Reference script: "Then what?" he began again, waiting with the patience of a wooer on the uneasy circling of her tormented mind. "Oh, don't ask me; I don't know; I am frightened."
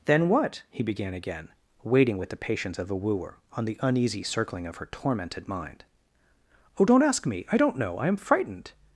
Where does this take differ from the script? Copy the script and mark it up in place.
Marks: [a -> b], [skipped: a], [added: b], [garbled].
"Then what?" he began again, waiting with the patience of a wooer on the uneasy circling of her tormented mind. "Oh, don't ask me; I don't know; I am frightened."